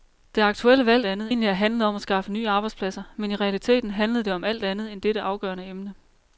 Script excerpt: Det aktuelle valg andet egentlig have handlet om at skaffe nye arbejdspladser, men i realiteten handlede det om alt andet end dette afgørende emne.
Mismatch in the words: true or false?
false